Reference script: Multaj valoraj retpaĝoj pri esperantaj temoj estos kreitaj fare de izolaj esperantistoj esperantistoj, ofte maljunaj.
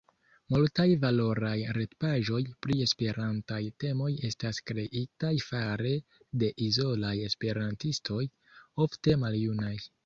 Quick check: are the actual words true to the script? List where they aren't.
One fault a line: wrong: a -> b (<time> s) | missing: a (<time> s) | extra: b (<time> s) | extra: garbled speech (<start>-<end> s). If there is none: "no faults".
wrong: estos -> estas (4.3 s)
missing: esperantistoj (8.2 s)